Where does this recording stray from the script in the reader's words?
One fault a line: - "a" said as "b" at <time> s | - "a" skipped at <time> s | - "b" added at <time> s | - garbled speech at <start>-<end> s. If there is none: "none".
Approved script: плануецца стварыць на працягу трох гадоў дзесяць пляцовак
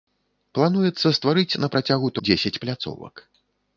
- "трох гадоў" skipped at 2.1 s